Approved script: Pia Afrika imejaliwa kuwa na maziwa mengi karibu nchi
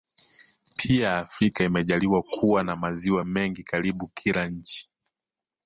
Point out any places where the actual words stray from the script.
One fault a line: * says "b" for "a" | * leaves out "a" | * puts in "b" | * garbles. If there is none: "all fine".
* puts in "kila"